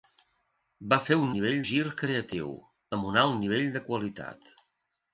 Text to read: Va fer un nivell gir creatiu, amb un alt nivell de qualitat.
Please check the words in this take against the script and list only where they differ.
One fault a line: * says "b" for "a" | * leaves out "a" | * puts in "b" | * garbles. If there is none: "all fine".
all fine